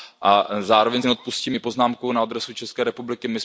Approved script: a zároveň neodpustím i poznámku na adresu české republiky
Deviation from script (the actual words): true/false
false